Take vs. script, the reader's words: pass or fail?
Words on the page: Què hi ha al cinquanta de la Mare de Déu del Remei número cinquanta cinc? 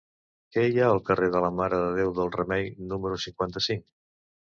fail